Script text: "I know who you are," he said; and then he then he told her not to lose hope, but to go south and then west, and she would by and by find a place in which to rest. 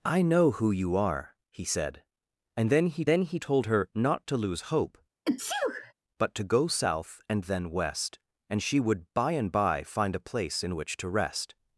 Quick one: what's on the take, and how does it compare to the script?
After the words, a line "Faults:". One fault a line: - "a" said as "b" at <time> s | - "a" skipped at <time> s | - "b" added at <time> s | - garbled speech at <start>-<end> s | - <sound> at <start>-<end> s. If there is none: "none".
"I know who you are," he said; and then he then he told her not to lose hope, but to go south and then west, and she would by and by find a place in which to rest.
Faults:
- sneeze at 5.3-5.9 s